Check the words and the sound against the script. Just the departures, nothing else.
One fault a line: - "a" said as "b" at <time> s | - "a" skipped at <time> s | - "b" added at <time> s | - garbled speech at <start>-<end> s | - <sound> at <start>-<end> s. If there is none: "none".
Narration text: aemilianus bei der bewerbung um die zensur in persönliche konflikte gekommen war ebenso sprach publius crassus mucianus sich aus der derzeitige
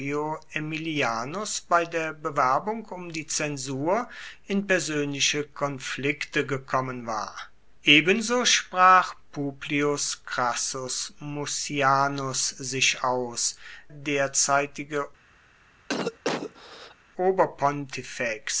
- "der" skipped at 13.6 s
- cough at 15.9-16.9 s